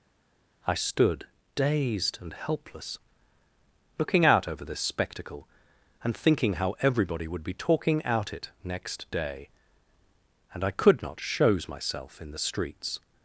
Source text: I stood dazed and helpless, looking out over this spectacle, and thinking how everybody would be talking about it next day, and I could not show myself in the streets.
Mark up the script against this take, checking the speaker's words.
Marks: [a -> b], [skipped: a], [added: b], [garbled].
I stood dazed and helpless, looking out over this spectacle, and thinking how everybody would be talking [about -> out] it next day, and I could not [show -> shows] myself in the streets.